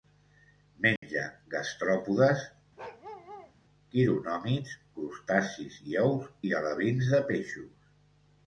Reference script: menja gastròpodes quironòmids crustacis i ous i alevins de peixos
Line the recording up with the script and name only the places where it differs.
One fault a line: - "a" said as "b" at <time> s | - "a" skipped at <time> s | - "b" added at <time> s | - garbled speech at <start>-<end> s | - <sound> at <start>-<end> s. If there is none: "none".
- dropout at 1.0-1.0 s
- bark at 2.8-3.5 s